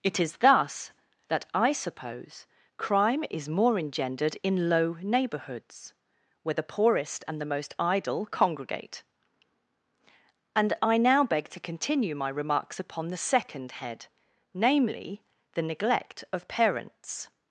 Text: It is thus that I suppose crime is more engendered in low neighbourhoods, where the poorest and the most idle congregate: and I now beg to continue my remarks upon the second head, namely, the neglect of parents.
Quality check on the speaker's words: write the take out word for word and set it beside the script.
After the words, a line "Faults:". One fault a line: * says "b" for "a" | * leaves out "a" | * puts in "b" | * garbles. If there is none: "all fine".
It is thus that I suppose crime is more engendered in low neighbourhoods, where the poorest and the most idle congregate: and I now beg to continue my remarks upon the second head, namely, the neglect of parents.
Faults:
all fine